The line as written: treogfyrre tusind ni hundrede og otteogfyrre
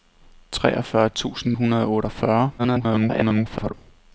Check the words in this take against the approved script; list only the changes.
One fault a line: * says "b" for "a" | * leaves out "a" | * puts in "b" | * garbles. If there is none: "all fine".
* leaves out "ni"
* garbles